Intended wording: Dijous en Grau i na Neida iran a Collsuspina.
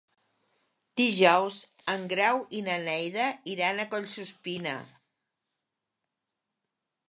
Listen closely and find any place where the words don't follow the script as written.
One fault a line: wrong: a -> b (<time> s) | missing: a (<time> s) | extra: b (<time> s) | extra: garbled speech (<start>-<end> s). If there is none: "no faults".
no faults